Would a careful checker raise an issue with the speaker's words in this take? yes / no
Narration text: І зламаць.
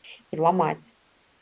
no